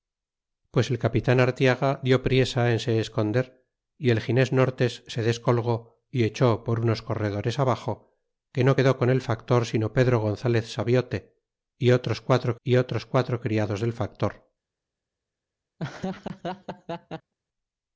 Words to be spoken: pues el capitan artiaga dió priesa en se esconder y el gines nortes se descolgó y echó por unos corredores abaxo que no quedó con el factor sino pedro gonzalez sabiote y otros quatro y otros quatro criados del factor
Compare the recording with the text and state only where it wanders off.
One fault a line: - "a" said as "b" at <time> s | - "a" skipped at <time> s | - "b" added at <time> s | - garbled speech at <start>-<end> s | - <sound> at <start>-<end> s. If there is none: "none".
- laugh at 15.8-17.3 s